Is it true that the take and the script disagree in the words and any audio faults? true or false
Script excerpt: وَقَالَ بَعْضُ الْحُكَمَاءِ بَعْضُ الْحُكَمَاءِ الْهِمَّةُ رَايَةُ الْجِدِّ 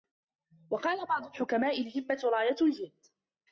true